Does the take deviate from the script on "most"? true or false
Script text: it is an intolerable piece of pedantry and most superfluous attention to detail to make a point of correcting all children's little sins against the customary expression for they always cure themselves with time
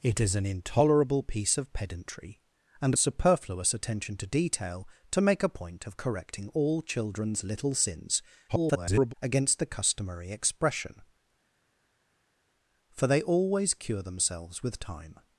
true